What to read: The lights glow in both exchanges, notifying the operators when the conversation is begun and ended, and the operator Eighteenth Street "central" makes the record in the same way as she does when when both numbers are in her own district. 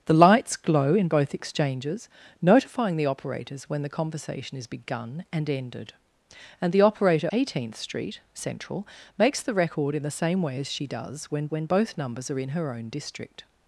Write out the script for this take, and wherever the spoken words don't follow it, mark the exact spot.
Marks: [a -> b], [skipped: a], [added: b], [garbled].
The lights glow in both exchanges, notifying the operators when the conversation is begun and ended, and the operator Eighteenth Street "central" makes the record in the same way as she does when when both numbers are in her own district.